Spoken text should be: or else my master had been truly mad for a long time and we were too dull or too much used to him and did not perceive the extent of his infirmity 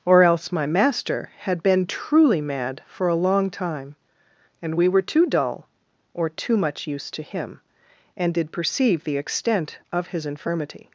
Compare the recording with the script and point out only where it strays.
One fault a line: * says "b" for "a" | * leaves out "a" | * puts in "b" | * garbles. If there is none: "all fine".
* leaves out "not"